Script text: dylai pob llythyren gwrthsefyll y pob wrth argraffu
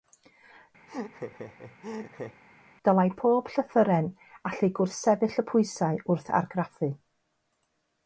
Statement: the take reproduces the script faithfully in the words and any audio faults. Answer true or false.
false